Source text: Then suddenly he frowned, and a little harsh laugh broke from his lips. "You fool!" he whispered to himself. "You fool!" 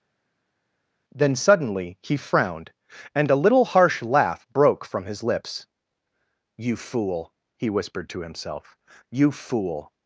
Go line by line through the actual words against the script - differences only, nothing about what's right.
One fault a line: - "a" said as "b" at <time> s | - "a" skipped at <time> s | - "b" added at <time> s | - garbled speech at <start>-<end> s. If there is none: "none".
none